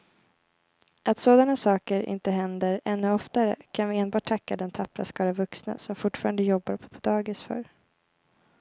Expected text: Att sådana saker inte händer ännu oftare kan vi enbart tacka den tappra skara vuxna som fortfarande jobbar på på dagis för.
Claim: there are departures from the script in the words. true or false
false